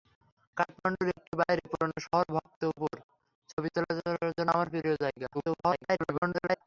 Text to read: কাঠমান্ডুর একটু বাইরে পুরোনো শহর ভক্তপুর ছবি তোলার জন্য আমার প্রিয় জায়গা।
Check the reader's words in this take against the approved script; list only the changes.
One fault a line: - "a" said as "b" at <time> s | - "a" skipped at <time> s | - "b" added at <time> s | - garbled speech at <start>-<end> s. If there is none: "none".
- garbled speech at 5.3-6.6 s